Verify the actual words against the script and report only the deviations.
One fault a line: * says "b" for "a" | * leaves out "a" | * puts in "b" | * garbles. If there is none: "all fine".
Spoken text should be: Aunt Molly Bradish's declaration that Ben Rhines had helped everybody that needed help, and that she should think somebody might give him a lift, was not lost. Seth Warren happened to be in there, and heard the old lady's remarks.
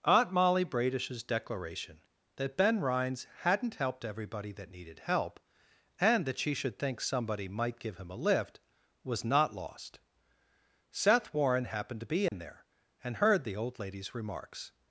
* says "hadn't" for "had"